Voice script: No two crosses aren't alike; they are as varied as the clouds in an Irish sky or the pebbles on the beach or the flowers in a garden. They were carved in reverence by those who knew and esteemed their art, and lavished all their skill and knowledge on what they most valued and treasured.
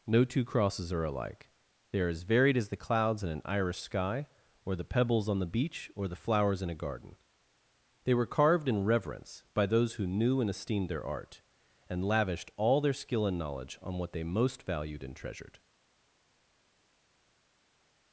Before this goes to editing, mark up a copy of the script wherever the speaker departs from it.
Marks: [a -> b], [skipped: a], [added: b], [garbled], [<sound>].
No two crosses [aren't -> are] alike; they are as varied as the clouds in an Irish sky or the pebbles on the beach or the flowers in a garden. They were carved in reverence by those who knew and esteemed their art, and lavished all their skill and knowledge on what they most valued and treasured.